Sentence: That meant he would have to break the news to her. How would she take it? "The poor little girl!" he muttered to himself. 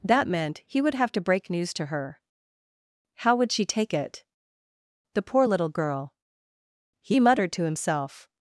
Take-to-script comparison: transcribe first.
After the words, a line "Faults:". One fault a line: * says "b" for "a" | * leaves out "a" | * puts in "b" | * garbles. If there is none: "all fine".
That meant he would have to break news to her. How would she take it? "The poor little girl!" he muttered to himself.
Faults:
* leaves out "the"